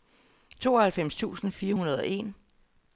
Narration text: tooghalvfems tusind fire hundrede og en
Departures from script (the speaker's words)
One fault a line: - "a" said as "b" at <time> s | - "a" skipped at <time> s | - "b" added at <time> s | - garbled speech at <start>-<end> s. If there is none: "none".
none